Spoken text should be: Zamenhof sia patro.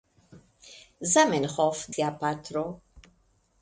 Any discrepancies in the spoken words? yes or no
no